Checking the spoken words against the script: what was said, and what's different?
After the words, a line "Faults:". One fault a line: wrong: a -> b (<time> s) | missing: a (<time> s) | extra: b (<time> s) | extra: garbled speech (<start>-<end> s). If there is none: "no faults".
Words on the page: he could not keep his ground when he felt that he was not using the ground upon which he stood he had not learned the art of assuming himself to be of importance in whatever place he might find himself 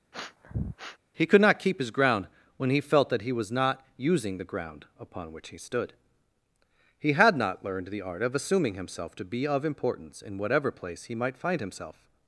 he could not keep his ground when he felt that he was not using the ground upon which he stood he had not learned the art of assuming himself to be of importance in whatever place he might find himself
Faults:
no faults